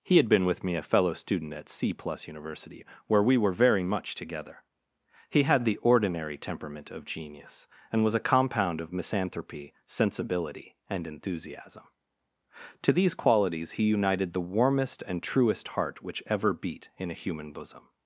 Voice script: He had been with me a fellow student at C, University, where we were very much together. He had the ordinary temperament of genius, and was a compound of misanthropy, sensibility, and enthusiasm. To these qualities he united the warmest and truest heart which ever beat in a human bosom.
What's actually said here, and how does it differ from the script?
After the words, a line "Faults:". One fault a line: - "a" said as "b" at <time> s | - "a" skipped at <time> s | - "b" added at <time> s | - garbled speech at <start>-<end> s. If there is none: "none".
He had been with me a fellow student at C, plus University, where we were very much together. He had the ordinary temperament of genius, and was a compound of misanthropy, sensibility, and enthusiasm. To these qualities he united the warmest and truest heart which ever beat in a human bosom.
Faults:
- "plus" added at 1.9 s